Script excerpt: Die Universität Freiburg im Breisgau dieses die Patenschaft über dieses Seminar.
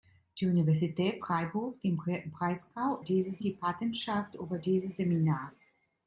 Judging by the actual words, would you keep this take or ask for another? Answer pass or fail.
pass